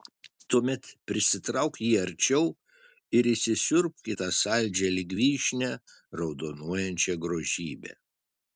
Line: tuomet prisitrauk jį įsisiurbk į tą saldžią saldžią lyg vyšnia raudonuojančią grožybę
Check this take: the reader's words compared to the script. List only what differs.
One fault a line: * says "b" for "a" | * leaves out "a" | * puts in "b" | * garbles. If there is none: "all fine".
* puts in "arčiau ir"
* leaves out "saldžią"